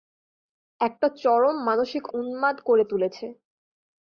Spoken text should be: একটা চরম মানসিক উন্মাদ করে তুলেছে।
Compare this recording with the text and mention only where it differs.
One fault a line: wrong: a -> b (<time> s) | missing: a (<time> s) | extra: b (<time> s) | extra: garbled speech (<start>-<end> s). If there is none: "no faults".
no faults